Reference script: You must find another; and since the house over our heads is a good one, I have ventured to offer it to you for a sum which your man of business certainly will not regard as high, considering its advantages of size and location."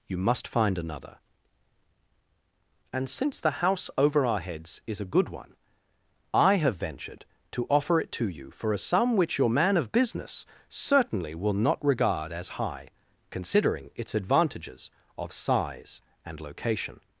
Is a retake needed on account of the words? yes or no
no